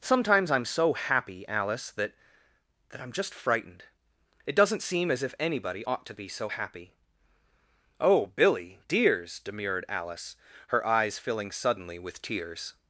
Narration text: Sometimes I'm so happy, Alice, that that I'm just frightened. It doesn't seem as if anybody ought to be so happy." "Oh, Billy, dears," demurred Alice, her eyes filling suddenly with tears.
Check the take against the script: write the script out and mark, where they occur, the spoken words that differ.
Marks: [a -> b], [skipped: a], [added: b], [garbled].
Sometimes I'm so happy, Alice, that that I'm just frightened. It doesn't seem as if anybody ought to be so happy." "Oh, Billy, dears," demurred Alice, her eyes filling suddenly with tears.